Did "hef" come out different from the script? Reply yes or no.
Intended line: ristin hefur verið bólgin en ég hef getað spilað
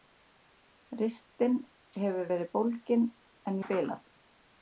yes